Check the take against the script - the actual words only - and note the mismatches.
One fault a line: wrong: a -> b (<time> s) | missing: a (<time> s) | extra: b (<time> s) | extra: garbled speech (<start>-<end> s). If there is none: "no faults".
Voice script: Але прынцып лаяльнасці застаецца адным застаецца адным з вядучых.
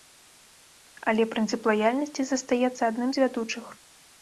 missing: застаецца адным (3.1 s)